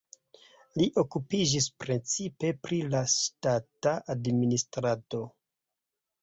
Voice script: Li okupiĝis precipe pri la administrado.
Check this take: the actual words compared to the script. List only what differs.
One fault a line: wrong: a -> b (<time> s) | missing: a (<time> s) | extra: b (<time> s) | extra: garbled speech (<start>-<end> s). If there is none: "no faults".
extra: ŝtata (3.2 s)